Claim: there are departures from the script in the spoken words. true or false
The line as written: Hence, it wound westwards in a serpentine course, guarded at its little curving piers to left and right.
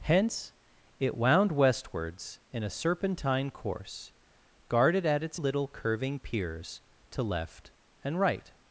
false